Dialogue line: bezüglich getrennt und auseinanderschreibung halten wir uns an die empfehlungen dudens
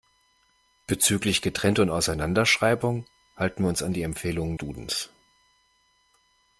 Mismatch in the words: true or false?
false